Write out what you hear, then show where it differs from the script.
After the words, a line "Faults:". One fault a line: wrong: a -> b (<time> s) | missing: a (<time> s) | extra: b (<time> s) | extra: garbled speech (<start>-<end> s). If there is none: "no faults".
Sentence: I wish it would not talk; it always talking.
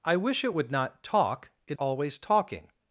I wish it would not talk; it always talking.
Faults:
no faults